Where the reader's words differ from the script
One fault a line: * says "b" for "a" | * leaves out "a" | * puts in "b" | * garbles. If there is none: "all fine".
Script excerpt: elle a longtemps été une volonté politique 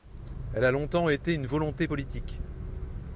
all fine